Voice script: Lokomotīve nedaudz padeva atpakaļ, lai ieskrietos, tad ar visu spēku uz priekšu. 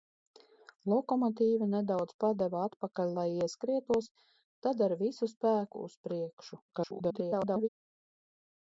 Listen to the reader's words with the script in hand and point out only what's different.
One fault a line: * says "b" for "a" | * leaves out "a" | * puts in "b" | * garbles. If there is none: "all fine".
* garbles